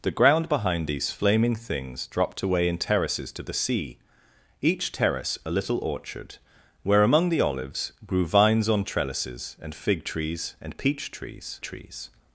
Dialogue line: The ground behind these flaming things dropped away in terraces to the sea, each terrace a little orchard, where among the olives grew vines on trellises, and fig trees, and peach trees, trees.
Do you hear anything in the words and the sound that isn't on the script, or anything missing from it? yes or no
no